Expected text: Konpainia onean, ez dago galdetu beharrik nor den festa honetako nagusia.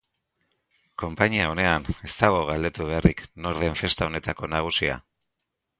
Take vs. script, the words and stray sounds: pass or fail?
pass